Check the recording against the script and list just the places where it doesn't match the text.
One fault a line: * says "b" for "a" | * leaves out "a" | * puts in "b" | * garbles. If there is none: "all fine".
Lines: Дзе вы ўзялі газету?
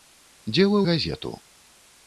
* leaves out "ўзялі"